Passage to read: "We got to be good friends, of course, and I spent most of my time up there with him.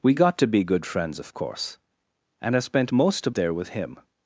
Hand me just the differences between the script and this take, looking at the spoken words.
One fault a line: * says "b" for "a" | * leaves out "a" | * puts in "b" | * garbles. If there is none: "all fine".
* leaves out "my time up"